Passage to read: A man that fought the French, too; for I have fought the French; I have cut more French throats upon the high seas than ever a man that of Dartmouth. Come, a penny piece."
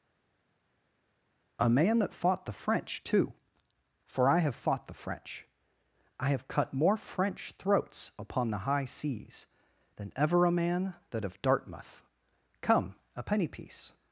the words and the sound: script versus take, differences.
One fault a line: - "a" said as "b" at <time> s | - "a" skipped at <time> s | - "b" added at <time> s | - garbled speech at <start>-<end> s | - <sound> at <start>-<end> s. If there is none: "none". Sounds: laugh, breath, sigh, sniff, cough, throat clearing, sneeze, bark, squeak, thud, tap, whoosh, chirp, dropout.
none